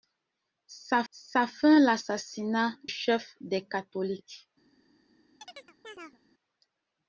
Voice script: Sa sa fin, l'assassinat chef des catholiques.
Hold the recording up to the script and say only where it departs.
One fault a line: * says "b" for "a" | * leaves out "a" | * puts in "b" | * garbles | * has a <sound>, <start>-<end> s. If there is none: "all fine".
* has a chirp, 5.4-6.2 s